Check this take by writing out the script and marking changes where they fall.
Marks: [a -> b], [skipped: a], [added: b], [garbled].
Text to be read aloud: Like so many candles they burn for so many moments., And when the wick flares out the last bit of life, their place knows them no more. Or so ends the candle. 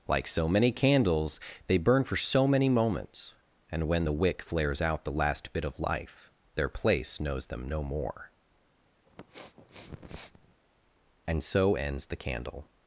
Like so many candles they burn for so many moments., And when the wick flares out the last bit of life, their place knows them no more. [Or -> And] so ends the candle.